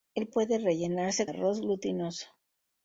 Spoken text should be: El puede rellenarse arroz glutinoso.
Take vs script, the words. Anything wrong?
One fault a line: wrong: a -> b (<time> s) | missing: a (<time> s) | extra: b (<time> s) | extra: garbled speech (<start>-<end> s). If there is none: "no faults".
no faults